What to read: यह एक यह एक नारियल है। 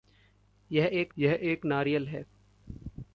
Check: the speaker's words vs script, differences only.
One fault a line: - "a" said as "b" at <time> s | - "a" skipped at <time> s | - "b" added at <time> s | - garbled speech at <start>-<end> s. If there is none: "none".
none